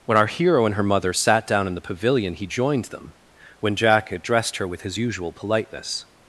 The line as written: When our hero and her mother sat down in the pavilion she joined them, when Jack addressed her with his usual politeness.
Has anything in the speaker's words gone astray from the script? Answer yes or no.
yes